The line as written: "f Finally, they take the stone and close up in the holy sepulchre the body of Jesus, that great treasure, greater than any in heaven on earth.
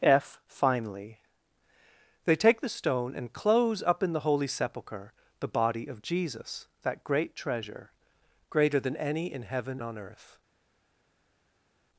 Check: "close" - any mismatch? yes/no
no